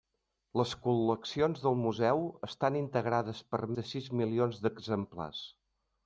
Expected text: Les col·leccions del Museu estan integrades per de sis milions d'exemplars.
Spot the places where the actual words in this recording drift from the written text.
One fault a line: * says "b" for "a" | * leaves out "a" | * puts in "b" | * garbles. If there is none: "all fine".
all fine